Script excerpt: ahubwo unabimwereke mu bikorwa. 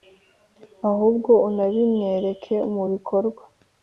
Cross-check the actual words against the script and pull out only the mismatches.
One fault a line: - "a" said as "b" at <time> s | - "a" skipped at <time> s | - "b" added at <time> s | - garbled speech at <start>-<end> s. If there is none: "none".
none